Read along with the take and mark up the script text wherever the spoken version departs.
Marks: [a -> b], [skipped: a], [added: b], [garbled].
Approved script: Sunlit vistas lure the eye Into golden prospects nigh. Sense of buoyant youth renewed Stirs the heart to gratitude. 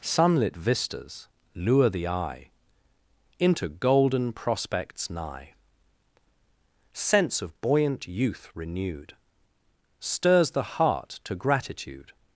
Sunlit vistas lure the eye Into golden prospects nigh. Sense of buoyant youth renewed Stirs the heart to gratitude.